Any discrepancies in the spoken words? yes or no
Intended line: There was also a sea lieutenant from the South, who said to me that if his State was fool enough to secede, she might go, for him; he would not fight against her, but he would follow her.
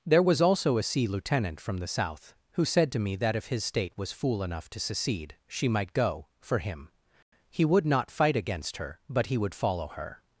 no